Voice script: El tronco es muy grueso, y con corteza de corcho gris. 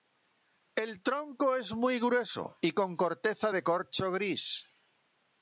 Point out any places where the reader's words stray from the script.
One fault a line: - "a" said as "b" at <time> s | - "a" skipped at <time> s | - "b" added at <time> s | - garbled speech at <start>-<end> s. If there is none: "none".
none